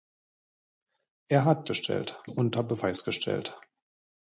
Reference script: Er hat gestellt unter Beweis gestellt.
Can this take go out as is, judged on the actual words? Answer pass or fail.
pass